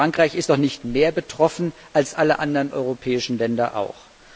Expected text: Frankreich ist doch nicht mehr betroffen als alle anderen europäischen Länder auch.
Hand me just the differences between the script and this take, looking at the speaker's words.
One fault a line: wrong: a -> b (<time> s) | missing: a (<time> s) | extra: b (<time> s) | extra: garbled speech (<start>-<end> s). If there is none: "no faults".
no faults